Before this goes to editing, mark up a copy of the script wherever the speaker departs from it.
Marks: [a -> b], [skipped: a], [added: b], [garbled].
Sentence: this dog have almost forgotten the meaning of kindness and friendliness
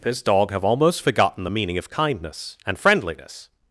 this dog have almost forgotten the meaning of kindness and friendliness